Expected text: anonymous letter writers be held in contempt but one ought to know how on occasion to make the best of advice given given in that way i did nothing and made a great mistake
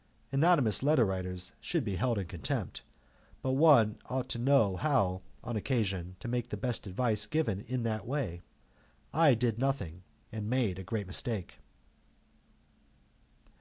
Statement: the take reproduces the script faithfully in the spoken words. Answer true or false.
false